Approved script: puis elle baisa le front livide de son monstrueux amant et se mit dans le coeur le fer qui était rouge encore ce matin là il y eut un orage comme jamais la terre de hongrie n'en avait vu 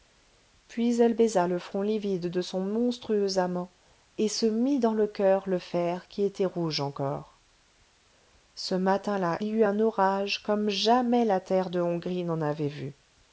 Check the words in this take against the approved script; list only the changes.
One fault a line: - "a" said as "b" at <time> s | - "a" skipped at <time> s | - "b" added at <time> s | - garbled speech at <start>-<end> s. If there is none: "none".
- "il" skipped at 9.4 s